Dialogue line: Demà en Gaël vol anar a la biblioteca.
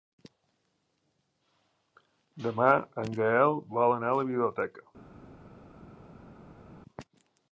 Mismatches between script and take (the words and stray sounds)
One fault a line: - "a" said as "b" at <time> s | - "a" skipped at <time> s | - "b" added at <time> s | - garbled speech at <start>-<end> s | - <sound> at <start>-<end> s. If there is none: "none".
none